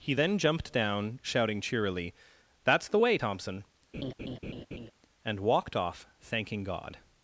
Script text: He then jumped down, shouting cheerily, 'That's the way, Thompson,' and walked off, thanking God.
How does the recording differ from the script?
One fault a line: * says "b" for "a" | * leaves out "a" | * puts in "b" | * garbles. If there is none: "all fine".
all fine